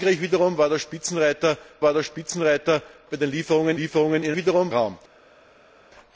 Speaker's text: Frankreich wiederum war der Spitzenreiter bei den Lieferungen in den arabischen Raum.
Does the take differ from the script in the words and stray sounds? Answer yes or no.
yes